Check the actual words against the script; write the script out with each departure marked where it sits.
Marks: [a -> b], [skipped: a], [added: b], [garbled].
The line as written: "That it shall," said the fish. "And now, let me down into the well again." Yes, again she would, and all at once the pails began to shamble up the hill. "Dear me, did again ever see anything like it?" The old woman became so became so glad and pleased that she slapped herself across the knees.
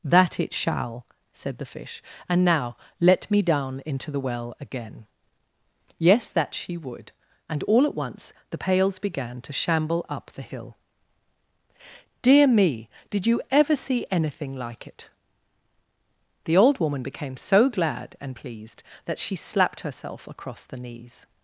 "That it shall," said the fish. "And now, let me down into the well again." Yes, [again -> that] she would, and all at once the pails began to shamble up the hill. "Dear me, did [again -> you] ever see anything like it?" The old woman became so [skipped: became so] glad and pleased that she slapped herself across the knees.